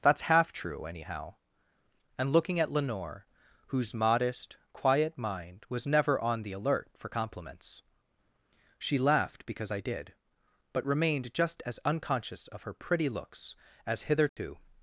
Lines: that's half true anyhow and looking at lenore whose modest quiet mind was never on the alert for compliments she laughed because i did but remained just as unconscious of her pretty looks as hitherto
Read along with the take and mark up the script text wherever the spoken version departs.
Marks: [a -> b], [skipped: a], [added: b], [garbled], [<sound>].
that's half true anyhow and looking at lenore whose modest quiet mind was never on the alert for compliments she laughed because i did but remained just as unconscious of her pretty looks as hitherto [dropout]